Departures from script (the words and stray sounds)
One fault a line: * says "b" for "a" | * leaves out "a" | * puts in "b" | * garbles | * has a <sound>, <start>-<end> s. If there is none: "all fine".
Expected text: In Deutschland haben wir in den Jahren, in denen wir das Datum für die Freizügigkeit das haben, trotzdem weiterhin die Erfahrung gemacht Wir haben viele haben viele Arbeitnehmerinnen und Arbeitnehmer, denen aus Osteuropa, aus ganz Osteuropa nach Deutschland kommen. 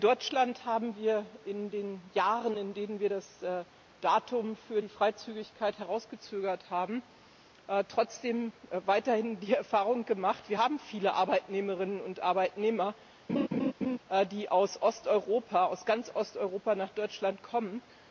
* says "hinausgezögert" for "das"
* leaves out "haben viele"
* has a laugh, 13.3-14.0 s
* says "die" for "denen"